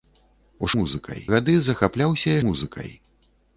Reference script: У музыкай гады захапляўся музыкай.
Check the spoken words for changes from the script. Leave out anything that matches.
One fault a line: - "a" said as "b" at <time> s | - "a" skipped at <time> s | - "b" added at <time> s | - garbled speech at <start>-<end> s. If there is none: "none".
none